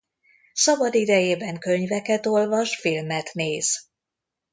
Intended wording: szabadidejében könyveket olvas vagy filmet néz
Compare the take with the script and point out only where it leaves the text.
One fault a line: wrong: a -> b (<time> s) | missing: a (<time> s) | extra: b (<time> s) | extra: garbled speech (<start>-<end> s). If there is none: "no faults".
missing: vagy (2.8 s)